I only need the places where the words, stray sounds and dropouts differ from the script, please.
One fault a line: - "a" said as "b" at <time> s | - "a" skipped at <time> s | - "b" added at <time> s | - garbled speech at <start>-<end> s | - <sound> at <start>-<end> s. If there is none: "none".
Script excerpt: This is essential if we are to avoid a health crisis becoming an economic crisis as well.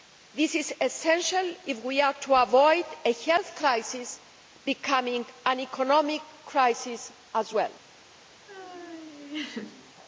- laugh at 8.5-9.9 s